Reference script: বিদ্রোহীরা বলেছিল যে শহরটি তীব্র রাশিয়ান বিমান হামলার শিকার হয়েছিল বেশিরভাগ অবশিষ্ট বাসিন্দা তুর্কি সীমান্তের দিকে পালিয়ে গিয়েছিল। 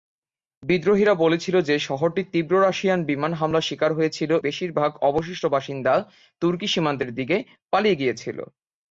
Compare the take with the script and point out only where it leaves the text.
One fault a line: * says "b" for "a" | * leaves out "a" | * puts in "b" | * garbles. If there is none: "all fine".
all fine